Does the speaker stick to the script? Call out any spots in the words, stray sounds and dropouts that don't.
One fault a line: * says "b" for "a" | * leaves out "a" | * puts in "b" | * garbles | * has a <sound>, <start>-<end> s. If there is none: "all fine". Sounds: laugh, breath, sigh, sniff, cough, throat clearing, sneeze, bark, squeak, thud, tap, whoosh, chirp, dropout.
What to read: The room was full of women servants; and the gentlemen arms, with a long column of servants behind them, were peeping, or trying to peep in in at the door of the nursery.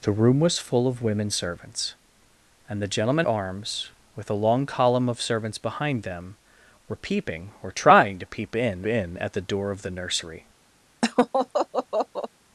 * has a laugh, 11.0-12.3 s